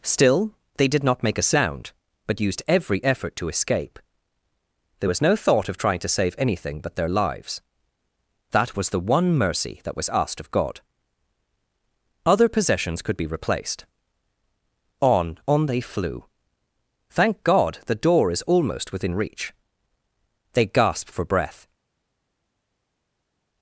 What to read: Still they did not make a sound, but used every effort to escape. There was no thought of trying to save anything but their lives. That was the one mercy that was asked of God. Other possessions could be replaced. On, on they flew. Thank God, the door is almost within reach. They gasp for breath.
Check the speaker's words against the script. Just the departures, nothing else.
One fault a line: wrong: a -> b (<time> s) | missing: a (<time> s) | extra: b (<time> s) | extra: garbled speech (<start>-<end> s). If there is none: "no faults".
no faults